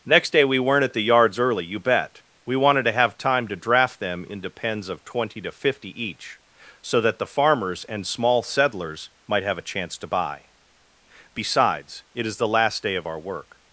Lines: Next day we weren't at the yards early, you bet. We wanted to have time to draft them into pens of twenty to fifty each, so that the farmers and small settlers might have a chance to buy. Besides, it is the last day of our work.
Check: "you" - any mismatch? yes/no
no